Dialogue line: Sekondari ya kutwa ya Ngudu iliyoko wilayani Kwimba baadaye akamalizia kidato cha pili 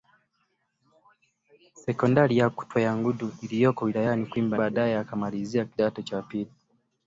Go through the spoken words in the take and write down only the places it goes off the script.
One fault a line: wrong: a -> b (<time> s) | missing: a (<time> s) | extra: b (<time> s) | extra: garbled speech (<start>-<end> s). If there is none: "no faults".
no faults